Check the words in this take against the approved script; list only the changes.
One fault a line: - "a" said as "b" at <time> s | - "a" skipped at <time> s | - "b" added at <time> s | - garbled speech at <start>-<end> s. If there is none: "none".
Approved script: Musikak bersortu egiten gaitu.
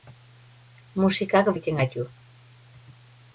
- "bersortu" skipped at 1.5 s